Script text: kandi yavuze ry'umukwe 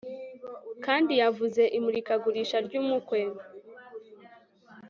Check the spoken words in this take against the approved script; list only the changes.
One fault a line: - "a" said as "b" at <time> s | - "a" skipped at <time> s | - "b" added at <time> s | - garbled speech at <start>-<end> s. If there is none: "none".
- "imurikagurisha" added at 1.8 s